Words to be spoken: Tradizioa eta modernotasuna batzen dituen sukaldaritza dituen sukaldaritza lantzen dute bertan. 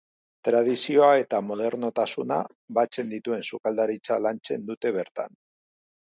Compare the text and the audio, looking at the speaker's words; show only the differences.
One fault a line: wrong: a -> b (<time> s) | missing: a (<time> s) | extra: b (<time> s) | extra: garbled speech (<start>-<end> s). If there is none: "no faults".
missing: dituen sukaldaritza (4.2 s)